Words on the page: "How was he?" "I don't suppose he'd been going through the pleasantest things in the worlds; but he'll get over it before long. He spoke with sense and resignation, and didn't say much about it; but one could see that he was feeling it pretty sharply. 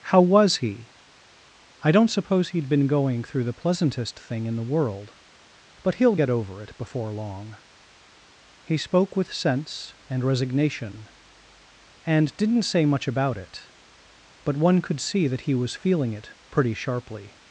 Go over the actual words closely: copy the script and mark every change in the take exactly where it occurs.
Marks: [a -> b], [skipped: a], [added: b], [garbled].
"How was he?" "I don't suppose he'd been going through the pleasantest [things -> thing] in the [worlds; -> world] but he'll get over it before long. He spoke with sense and resignation, and didn't say much about it; but one could see that he was feeling it pretty sharply.